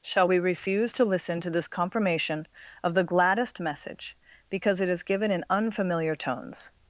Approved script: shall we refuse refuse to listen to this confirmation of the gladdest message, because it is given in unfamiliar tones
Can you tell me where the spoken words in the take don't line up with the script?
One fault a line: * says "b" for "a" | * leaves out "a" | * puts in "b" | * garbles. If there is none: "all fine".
* leaves out "refuse"